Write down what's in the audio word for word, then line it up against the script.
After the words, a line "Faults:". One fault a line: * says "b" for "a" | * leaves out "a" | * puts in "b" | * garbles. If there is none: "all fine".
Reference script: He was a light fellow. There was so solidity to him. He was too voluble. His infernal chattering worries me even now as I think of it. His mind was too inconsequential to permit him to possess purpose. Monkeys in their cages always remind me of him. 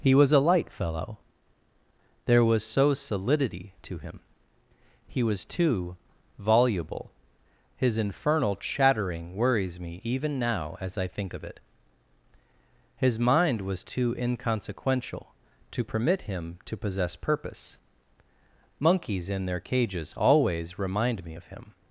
He was a light fellow. There was so solidity to him. He was too voluble. His infernal chattering worries me even now as I think of it. His mind was too inconsequential to permit him to possess purpose. Monkeys in their cages always remind me of him.
Faults:
all fine